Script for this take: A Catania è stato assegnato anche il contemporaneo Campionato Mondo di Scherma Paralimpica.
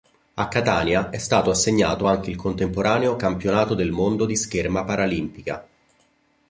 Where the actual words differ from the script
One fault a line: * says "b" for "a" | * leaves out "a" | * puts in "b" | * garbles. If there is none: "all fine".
* puts in "del"